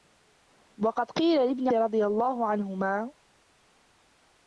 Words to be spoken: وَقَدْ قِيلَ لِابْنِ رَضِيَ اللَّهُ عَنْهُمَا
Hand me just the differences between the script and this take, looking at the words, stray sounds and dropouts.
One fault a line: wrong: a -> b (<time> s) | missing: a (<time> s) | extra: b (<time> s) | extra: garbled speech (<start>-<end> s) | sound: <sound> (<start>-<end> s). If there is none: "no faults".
no faults